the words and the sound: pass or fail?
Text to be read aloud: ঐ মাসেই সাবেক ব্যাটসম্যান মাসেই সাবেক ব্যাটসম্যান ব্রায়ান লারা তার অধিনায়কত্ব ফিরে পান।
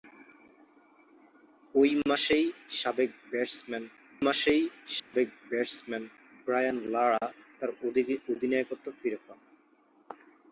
fail